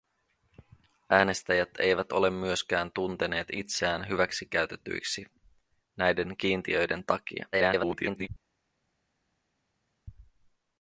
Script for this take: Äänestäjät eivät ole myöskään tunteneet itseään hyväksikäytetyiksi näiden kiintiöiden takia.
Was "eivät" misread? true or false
false